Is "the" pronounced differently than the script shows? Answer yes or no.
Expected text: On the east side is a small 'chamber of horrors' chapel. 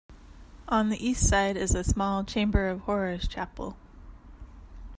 no